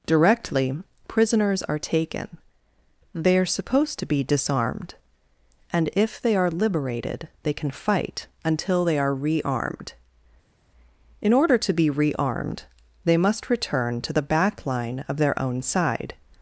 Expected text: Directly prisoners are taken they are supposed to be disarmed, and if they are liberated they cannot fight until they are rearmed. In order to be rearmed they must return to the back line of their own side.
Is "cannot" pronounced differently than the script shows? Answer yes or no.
yes